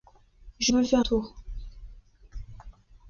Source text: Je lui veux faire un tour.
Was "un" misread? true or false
true